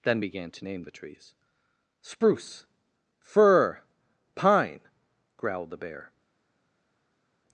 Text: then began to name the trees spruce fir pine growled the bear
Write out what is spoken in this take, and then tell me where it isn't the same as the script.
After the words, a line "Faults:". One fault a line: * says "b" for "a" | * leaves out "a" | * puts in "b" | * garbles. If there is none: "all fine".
then began to name the trees spruce fir pine growled the bear
Faults:
all fine